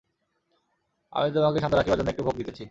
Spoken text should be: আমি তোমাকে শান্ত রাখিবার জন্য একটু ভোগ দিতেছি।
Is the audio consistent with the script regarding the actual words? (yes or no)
yes